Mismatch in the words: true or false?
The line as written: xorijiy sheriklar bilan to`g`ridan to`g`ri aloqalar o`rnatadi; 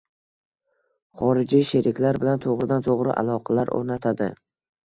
false